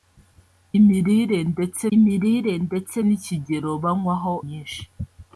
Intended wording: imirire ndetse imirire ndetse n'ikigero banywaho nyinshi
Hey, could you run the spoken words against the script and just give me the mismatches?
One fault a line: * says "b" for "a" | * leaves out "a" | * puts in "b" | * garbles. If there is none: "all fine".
all fine